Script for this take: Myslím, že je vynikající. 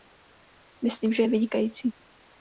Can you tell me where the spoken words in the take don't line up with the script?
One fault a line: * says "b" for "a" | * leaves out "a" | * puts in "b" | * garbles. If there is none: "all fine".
all fine